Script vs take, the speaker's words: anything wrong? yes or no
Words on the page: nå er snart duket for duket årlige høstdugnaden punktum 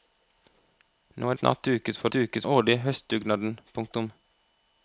no